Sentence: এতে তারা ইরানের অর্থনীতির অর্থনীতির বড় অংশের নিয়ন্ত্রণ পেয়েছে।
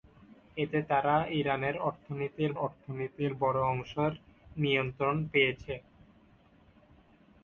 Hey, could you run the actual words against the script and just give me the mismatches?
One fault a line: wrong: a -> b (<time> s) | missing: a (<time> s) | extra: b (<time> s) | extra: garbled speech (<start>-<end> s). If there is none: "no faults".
no faults